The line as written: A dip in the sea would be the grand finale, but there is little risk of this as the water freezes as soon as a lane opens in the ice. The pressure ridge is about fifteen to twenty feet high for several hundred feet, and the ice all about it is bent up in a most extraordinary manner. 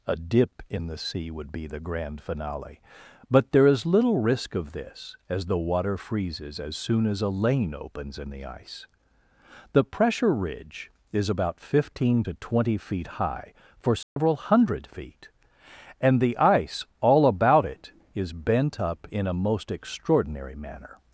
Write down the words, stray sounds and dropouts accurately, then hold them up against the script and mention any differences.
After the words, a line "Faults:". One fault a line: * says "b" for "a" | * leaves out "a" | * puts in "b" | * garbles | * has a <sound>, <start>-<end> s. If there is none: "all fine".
A dip in the sea would be the grand finale, but there is little risk of this as the water freezes as soon as a lane opens in the ice. The pressure ridge is about fifteen to twenty feet high for several hundred feet, and the ice all about it is bent up in a most extraordinary manner.
Faults:
* has a dropout, 14.0-14.2 s